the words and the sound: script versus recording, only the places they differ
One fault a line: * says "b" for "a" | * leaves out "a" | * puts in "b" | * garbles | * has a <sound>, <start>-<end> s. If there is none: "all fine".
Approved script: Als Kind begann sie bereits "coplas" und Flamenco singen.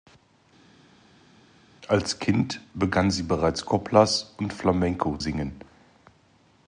all fine